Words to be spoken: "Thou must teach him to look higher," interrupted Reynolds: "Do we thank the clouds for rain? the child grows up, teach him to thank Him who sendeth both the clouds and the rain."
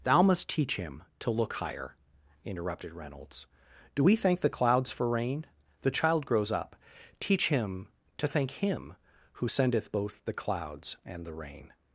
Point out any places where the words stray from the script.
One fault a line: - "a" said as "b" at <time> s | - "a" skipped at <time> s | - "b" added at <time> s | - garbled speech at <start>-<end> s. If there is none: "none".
none